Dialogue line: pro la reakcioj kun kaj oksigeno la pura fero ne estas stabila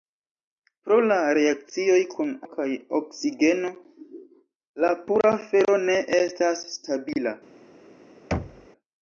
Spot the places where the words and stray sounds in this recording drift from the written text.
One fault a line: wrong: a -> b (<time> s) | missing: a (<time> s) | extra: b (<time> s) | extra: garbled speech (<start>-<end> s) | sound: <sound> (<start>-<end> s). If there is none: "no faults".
sound: thud (8.3-8.7 s)